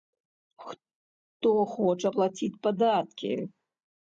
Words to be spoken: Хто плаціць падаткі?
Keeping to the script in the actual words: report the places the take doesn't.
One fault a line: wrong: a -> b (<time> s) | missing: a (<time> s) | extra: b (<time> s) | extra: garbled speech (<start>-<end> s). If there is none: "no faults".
extra: хоча (1.7 s)